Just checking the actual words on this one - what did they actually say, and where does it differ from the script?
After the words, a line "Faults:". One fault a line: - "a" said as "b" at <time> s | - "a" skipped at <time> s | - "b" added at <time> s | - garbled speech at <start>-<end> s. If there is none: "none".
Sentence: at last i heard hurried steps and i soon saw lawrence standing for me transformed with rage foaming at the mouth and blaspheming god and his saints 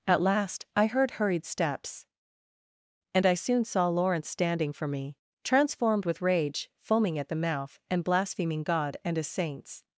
at last i heard hurried steps and i soon saw lawrence standing for me transformed with rage foaming at the mouth and blaspheming god and his saints
Faults:
none